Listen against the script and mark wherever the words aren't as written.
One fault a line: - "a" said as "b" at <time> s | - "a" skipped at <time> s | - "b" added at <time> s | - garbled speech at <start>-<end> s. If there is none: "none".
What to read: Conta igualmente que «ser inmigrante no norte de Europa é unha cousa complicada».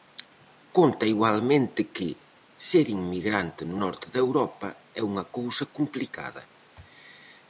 none